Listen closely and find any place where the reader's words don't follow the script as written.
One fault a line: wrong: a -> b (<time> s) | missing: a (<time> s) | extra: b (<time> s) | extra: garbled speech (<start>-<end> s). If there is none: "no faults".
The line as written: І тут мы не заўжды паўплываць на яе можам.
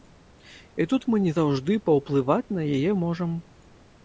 no faults